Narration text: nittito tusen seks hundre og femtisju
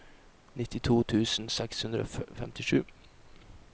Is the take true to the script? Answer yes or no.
yes